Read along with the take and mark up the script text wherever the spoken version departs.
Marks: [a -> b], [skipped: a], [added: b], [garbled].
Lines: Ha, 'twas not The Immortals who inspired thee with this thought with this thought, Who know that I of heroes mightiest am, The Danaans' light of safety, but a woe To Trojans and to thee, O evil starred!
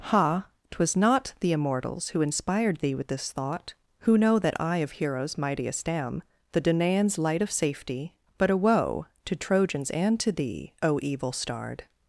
Ha, 'twas not The Immortals who inspired thee with this thought [skipped: with this thought,] Who know that I of heroes mightiest am, The Danaans' light of safety, but a woe To Trojans and to thee, O evil starred!